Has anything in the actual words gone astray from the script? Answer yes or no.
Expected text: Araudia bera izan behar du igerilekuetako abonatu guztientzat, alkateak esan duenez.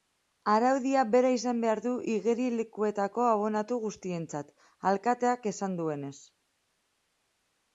no